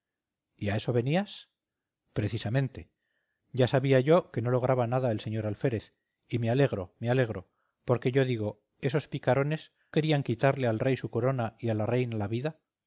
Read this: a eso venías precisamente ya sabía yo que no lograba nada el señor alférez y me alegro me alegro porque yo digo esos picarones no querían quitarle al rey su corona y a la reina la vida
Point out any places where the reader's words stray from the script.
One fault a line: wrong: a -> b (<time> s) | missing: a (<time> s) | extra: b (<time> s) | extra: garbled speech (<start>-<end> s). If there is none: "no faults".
missing: no (9.7 s)